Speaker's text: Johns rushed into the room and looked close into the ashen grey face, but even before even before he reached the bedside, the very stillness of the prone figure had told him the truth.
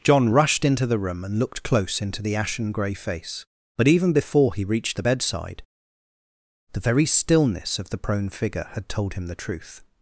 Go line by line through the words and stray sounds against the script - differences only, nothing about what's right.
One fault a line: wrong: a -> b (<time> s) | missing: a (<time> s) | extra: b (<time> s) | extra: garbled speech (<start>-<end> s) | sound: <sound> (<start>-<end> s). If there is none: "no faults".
wrong: Johns -> John (0.0 s)
missing: even before (4.5 s)